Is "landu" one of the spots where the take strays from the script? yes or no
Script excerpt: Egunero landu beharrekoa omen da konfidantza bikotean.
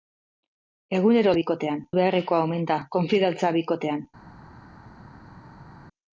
yes